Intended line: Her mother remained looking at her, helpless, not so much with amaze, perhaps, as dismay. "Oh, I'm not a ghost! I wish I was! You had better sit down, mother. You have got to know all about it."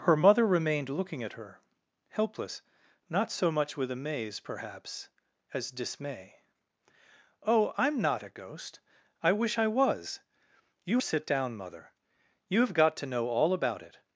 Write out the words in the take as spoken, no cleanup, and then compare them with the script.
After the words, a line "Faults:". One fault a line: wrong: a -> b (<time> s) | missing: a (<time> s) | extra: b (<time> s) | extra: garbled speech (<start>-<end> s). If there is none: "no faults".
Her mother remained looking at her, helpless, not so much with amaze, perhaps, as dismay. "Oh, I'm not a ghost! I wish I was! You sit down, mother. You have got to know all about it."
Faults:
missing: had better (11.0 s)